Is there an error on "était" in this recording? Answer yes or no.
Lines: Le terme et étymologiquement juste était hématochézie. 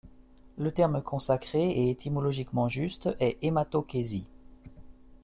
yes